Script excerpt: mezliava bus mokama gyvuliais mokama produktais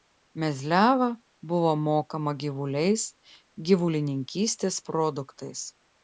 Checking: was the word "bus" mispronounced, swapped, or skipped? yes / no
yes